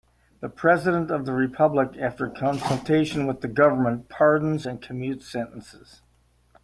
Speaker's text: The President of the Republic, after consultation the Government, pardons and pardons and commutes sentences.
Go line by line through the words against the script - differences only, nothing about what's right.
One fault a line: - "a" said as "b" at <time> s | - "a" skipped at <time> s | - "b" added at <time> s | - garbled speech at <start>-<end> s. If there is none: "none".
- "with" added at 3.3 s
- "pardons and" skipped at 4.8 s